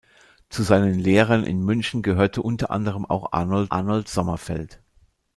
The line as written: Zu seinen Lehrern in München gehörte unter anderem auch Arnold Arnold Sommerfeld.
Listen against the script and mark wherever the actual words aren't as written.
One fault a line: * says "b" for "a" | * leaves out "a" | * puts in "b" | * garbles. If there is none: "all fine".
all fine